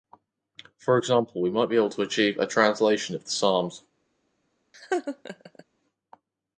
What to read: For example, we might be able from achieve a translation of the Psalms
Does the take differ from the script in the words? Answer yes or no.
yes